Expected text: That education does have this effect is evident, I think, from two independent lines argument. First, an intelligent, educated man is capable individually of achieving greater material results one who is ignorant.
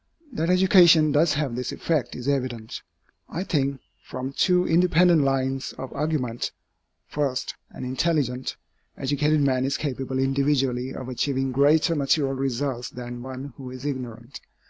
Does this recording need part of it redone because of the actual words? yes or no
yes